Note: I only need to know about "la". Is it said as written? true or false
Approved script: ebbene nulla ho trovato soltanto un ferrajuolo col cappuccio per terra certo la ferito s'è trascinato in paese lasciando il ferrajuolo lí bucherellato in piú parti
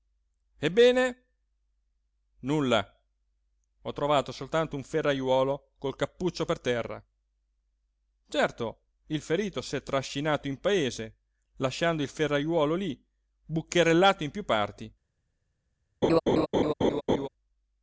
false